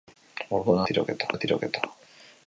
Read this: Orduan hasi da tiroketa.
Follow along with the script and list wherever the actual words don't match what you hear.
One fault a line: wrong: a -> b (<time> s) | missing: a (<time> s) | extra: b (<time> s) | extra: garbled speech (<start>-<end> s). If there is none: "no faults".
wrong: hasi -> tiroketa (0.9 s)